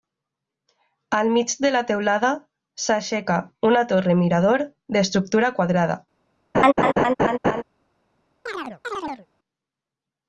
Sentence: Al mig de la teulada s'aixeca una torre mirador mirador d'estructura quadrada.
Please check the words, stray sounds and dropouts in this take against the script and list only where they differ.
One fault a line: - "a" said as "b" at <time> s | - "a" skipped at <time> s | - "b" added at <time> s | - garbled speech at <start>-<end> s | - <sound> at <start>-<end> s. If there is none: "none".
- "mirador" skipped at 4.7 s
- laugh at 6.5-7.6 s
- chirp at 8.5-9.3 s